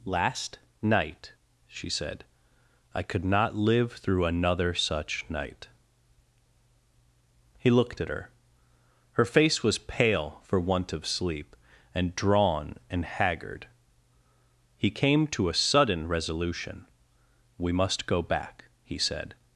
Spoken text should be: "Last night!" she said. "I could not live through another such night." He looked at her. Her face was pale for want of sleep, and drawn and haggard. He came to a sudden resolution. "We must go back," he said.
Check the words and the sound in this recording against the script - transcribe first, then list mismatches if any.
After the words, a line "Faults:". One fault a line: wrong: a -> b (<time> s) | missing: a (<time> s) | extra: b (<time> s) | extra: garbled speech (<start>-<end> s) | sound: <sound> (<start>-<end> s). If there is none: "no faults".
"Last night!" she said. "I could not live through another such night." He looked at her. Her face was pale for want of sleep, and drawn and haggard. He came to a sudden resolution. "We must go back," he said.
Faults:
no faults